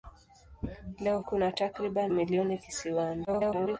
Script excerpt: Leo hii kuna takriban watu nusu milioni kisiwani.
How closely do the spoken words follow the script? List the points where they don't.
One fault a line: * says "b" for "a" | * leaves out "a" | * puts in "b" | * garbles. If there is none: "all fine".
* leaves out "hii"
* leaves out "watu nusu"
* garbles